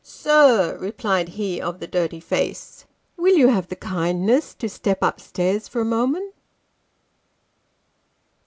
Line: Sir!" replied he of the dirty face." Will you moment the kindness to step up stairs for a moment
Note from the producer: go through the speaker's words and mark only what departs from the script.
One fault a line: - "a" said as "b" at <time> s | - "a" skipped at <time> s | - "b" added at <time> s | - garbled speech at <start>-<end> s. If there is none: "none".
- "moment" said as "have" at 3.5 s